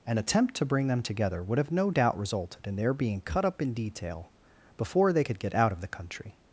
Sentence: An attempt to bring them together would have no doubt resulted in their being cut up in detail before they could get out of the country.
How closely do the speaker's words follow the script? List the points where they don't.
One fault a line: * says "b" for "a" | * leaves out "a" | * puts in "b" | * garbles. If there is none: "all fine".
all fine